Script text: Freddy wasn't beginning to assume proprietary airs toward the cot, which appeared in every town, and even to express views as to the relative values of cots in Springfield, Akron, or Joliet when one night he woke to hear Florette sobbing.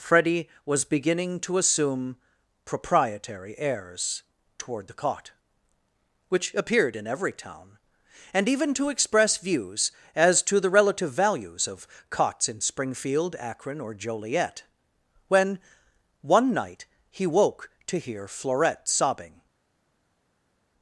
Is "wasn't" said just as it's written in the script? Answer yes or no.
no